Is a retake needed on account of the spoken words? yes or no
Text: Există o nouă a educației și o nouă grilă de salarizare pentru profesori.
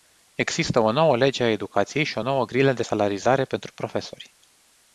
yes